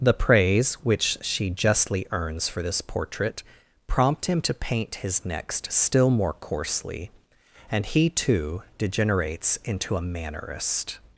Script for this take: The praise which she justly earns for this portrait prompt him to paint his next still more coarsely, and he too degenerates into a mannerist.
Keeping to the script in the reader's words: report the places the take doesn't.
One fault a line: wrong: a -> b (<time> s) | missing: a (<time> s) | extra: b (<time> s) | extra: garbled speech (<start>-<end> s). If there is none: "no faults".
no faults